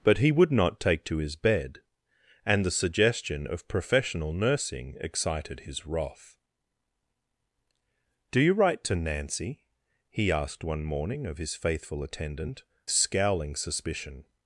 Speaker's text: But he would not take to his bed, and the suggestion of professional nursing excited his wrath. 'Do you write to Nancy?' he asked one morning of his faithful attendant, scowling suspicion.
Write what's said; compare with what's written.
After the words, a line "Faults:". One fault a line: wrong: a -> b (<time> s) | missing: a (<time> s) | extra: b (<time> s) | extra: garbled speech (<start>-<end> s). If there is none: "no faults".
But he would not take to his bed, and the suggestion of professional nursing excited his wrath. 'Do you write to Nancy?' he asked one morning of his faithful attendant, scowling suspicion.
Faults:
no faults